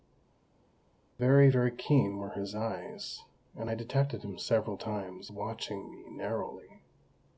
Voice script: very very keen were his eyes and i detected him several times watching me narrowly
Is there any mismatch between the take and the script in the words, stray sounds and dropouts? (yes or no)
no